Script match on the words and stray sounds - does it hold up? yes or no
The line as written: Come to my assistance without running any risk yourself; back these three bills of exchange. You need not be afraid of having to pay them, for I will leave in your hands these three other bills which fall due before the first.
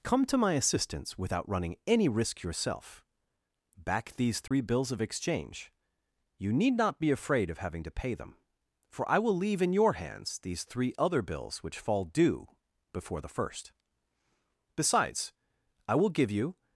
no